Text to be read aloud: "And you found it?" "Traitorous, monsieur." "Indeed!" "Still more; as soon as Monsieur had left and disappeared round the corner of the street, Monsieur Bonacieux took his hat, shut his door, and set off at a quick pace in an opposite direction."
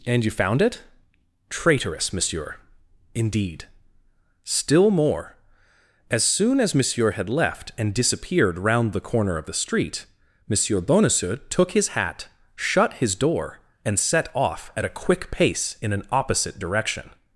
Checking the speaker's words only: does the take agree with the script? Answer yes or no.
yes